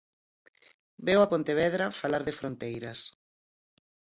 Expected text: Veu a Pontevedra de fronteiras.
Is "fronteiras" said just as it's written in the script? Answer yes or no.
yes